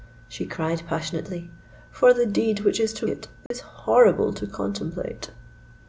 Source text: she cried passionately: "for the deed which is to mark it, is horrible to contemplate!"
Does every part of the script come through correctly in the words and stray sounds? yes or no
no